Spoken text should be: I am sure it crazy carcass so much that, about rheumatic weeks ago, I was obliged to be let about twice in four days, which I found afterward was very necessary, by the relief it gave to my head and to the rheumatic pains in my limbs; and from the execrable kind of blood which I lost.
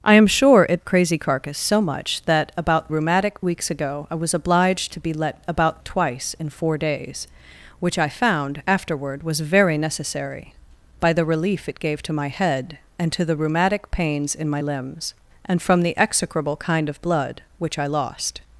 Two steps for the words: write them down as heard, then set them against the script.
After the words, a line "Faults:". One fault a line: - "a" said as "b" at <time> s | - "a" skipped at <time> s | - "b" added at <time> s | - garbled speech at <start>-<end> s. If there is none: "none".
I am sure it crazy carcass so much that, about rheumatic weeks ago, I was obliged to be let about twice in four days, which I found afterward was very necessary, by the relief it gave to my head and to the rheumatic pains in my limbs; and from the execrable kind of blood which I lost.
Faults:
none